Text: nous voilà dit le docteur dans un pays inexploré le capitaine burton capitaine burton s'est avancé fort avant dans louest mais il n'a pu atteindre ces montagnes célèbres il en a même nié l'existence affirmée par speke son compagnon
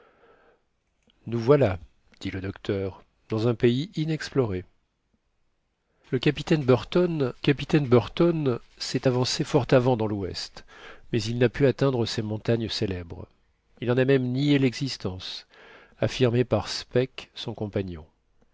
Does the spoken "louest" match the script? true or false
true